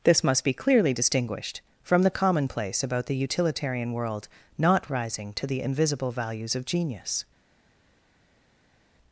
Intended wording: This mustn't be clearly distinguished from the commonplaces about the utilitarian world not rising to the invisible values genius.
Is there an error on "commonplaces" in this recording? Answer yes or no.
yes